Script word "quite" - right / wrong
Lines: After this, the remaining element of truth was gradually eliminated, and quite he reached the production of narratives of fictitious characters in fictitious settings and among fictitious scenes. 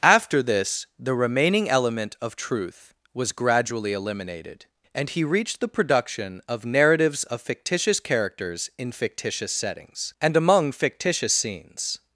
wrong